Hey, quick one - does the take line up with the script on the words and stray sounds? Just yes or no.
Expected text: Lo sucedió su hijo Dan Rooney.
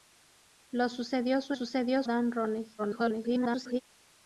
no